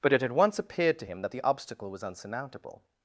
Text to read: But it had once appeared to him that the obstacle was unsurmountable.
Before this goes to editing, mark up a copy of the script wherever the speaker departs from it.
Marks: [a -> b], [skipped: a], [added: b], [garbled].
But it had once appeared to him that the obstacle was unsurmountable.